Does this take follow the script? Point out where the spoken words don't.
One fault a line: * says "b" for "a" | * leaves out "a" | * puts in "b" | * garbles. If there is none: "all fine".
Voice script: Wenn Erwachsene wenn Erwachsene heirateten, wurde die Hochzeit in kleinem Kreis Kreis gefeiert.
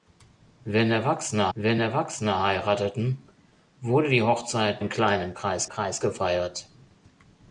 all fine